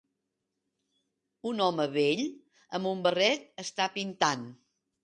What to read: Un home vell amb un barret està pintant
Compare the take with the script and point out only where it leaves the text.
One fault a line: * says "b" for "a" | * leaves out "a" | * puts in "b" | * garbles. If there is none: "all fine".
all fine